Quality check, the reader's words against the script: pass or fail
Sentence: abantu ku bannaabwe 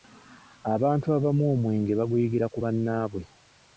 fail